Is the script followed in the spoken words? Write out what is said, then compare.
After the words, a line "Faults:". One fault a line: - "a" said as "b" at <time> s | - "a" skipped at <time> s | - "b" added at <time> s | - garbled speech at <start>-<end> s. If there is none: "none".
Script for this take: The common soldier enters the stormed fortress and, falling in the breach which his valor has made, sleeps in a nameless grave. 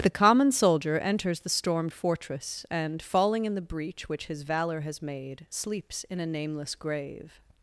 The common soldier enters the stormed fortress and, falling in the breach which his valor has made, sleeps in a nameless grave.
Faults:
none